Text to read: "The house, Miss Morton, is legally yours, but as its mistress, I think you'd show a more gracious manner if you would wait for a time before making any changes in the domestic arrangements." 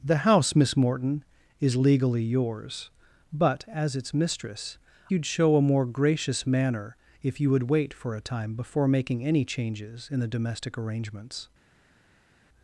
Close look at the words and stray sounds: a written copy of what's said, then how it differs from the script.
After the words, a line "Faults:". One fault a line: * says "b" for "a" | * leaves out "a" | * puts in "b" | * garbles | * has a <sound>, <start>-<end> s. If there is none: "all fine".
"The house, Miss Morton, is legally yours, but as its mistress, you'd show a more gracious manner if you would wait for a time before making any changes in the domestic arrangements."
Faults:
* leaves out "I think"